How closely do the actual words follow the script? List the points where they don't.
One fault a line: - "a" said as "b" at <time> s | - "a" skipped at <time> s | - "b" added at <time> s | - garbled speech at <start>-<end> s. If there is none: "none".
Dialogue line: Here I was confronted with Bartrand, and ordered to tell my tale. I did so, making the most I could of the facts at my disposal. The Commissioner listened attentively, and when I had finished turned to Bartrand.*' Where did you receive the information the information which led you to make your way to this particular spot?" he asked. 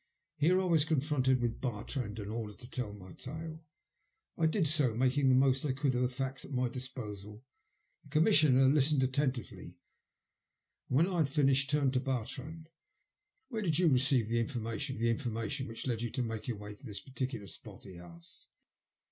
none